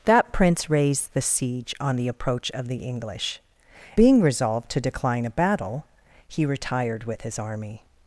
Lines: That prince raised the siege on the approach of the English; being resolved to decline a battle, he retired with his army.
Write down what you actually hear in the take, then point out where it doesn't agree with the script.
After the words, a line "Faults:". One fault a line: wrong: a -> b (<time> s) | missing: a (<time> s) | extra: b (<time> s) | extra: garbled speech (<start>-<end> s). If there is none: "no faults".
That prince raised the siege on the approach of the English; being resolved to decline a battle, he retired with his army.
Faults:
no faults